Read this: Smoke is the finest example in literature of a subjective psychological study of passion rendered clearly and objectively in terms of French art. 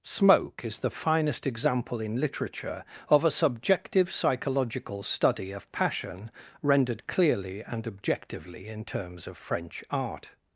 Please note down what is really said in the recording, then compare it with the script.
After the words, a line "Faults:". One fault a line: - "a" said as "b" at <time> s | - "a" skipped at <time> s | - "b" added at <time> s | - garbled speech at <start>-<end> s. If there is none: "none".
Smoke is the finest example in literature of a subjective psychological study of passion rendered clearly and objectively in terms of French art.
Faults:
none